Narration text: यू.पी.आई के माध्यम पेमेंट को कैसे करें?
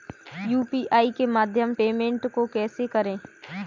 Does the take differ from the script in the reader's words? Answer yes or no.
no